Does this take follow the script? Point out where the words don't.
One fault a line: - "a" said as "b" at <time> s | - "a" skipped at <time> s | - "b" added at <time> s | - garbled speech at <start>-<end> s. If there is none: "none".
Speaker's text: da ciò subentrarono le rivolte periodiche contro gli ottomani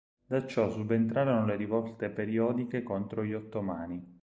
none